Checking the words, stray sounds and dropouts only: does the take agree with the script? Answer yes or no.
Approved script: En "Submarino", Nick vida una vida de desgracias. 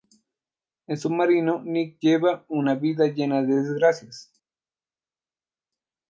no